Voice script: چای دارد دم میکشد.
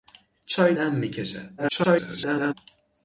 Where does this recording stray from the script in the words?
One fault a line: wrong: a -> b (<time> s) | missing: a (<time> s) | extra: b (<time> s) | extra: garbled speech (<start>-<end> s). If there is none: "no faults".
missing: دارد (0.8 s)
extra: garbled speech (1.6-2.5 s)